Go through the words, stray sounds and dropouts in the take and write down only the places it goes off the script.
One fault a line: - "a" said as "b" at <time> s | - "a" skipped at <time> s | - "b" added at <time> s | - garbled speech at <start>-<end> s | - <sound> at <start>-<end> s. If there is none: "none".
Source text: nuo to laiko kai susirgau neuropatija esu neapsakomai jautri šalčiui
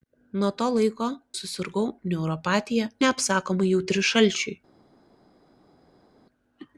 - "kai" skipped at 1.1 s
- "esu" skipped at 2.9 s